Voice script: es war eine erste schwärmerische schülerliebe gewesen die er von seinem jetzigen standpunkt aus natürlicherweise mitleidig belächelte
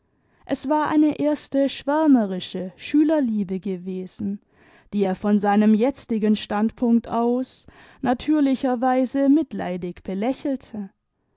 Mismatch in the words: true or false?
false